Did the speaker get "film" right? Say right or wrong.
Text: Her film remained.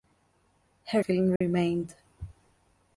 right